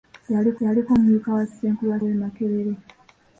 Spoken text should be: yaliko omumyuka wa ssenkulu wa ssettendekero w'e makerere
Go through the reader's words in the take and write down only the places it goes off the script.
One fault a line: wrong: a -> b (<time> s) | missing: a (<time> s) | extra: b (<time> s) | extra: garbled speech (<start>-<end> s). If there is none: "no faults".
extra: yaliko (0.6 s)
missing: ssettendekero (2.0 s)